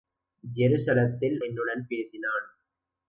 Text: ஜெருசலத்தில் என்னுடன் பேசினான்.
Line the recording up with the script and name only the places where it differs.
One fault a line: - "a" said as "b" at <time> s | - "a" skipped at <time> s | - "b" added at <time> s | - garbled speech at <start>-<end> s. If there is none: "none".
none